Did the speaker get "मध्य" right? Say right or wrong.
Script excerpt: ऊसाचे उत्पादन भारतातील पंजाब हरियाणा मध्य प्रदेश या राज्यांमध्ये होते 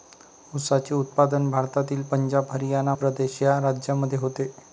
wrong